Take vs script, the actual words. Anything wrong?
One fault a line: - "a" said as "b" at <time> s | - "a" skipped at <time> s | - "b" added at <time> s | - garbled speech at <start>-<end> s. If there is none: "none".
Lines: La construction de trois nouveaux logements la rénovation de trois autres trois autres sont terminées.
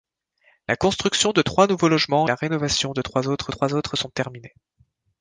none